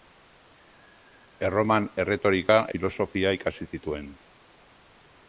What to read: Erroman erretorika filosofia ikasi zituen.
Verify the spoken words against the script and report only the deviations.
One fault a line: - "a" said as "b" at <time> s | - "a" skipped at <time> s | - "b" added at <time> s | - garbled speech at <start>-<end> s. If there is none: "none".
none